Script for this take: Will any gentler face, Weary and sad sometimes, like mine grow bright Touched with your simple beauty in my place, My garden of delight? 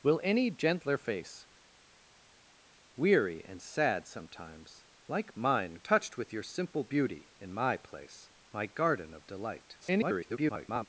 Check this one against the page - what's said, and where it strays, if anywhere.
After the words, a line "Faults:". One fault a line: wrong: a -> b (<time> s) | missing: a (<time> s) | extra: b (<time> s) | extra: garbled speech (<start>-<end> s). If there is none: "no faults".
Will any gentler face, Weary and sad sometimes, like mine Touched with your simple beauty in my place, My garden of delight? [garbled]
Faults:
missing: grow bright (5.7 s)
extra: garbled speech (9.8-10.9 s)